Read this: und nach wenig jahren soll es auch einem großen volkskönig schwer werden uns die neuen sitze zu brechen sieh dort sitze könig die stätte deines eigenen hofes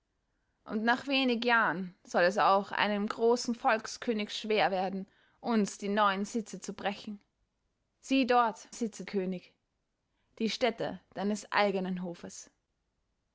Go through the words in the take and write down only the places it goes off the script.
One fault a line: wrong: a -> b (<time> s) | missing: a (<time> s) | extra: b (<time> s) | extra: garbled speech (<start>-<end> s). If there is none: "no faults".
no faults